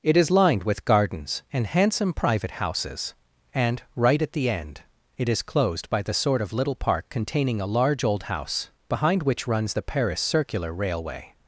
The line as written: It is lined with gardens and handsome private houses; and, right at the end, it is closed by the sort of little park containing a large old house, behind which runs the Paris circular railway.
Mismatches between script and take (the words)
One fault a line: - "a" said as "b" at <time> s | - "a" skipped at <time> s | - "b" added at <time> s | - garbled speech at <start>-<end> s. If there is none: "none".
none